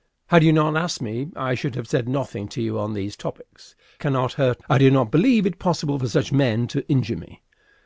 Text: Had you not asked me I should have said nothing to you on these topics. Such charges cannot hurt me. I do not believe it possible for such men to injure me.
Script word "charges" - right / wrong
wrong